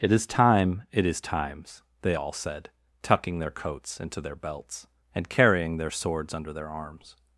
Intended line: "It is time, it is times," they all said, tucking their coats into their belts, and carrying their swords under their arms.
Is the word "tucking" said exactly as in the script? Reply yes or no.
yes